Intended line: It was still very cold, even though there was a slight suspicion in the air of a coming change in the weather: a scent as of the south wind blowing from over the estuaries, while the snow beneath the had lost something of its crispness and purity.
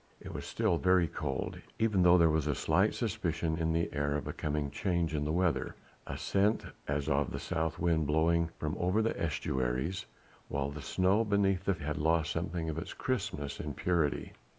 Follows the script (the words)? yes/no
yes